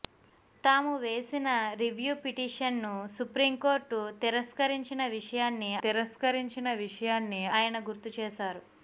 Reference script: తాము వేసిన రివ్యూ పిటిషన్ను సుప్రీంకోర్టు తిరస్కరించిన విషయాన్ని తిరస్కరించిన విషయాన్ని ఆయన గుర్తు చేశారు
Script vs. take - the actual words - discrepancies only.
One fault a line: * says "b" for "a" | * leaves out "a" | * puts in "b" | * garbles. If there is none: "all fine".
all fine